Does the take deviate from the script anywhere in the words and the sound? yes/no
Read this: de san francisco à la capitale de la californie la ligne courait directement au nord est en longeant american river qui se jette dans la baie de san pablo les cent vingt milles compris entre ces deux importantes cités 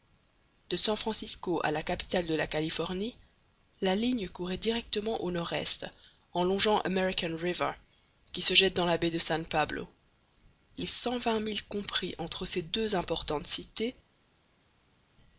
no